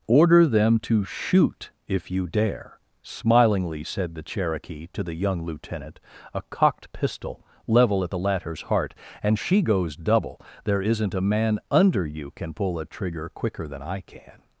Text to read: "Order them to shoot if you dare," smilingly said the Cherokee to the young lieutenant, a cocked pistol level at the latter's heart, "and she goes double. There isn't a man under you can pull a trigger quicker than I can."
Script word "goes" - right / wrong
right